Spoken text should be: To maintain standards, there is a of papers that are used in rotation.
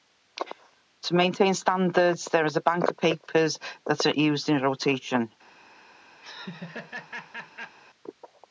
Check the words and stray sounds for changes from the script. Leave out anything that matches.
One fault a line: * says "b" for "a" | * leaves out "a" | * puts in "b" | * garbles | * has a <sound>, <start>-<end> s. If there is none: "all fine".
* puts in "bank"
* has a laugh, 6.2-7.8 s